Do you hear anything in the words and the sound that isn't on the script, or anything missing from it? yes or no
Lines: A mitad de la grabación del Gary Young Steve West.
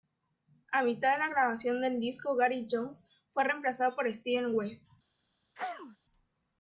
yes